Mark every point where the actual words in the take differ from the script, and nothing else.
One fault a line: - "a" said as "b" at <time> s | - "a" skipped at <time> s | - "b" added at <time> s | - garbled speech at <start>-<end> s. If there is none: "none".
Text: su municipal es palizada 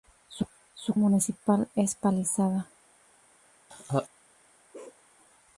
none